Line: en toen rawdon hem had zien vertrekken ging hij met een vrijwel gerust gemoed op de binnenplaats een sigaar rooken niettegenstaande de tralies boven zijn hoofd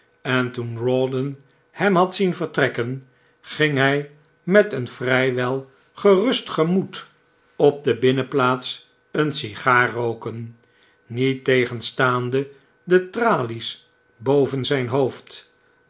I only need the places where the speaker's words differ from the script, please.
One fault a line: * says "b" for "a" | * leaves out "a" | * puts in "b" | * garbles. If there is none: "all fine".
all fine